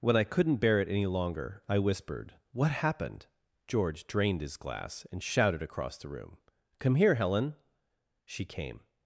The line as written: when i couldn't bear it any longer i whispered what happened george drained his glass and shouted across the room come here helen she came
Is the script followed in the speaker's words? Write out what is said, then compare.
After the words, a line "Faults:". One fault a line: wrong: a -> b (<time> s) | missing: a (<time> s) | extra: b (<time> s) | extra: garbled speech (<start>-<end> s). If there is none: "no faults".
when i couldn't bear it any longer i whispered what happened george drained his glass and shouted across the room come here helen she came
Faults:
no faults